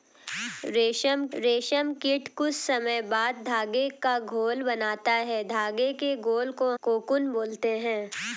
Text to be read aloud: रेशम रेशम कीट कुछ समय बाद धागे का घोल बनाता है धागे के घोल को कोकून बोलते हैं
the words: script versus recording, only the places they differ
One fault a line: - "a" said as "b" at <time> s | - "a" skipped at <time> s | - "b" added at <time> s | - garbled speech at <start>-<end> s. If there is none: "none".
none